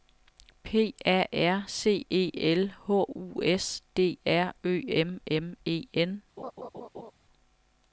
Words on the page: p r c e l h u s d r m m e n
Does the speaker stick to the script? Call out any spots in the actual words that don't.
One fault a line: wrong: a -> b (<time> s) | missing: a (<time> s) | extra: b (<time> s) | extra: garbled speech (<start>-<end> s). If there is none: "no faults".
extra: a (1.1 s)
extra: ø (4.6 s)